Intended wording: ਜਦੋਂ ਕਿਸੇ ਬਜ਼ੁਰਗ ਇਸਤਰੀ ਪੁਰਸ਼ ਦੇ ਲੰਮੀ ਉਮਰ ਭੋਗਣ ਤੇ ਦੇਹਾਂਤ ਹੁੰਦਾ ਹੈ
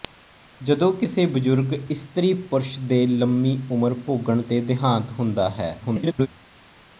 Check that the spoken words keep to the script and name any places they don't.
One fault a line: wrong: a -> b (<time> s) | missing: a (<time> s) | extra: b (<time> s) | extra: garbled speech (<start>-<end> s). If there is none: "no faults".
extra: garbled speech (5.8-6.3 s)